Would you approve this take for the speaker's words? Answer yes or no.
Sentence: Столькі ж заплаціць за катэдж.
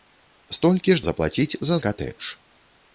yes